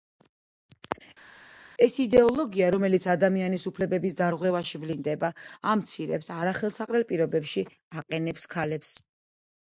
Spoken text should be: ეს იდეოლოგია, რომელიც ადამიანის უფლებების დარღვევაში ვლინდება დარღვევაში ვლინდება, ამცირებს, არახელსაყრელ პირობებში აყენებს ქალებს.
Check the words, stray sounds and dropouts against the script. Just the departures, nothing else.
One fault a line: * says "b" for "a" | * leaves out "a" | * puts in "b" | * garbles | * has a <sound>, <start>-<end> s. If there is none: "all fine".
* leaves out "დარღვევაში ვლინდება"